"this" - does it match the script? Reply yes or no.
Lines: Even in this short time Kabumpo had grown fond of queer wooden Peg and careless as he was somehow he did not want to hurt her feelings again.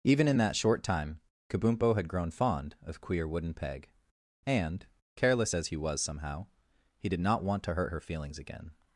no